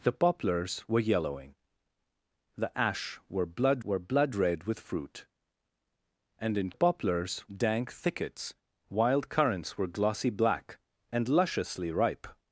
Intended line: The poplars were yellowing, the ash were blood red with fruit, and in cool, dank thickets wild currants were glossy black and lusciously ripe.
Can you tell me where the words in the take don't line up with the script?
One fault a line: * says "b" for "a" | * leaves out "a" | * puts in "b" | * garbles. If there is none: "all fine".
* puts in "were blood"
* says "poplars" for "cool"